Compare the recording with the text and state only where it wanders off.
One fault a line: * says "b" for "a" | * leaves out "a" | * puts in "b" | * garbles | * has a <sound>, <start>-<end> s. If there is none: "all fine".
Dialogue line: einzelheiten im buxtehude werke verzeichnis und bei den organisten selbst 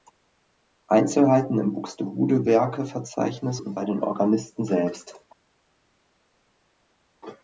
all fine